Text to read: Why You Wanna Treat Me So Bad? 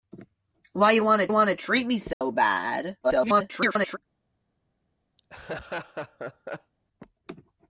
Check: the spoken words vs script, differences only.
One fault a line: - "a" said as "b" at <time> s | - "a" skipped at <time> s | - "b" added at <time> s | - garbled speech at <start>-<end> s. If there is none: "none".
- "Wanna" added at 1.3 s
- garbled speech at 3.0-4.0 s